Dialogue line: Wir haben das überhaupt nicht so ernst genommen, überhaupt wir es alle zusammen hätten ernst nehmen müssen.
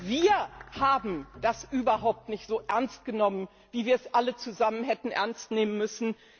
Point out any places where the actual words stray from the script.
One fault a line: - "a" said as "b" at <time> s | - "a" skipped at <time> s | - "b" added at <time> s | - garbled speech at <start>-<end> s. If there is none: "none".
- "überhaupt" said as "wie" at 3.7 s